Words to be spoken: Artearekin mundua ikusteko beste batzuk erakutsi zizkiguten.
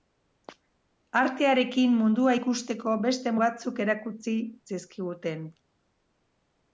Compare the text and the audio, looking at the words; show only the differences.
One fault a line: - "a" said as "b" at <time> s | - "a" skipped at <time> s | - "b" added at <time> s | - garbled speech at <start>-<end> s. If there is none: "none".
none